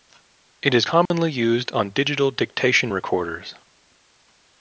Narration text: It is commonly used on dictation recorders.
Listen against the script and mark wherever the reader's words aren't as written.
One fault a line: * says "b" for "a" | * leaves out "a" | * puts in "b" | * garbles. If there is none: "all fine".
* puts in "digital"